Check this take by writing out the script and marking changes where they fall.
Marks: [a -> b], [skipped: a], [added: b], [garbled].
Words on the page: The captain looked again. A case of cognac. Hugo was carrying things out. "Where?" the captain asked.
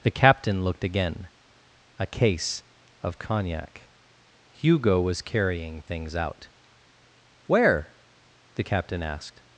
The captain looked again. A case of cognac. Hugo was carrying things out. "Where?" the captain asked.